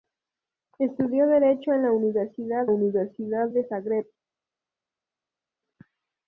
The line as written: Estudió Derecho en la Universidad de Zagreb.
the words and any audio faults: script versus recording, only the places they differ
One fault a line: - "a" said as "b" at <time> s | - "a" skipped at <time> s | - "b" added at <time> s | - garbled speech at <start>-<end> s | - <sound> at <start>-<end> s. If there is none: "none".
- "Universidad" added at 2.7 s